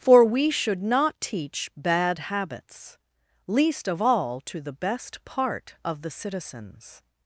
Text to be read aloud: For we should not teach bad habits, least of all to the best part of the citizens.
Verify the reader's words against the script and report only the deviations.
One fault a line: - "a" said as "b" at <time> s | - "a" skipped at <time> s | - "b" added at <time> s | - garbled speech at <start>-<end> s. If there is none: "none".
none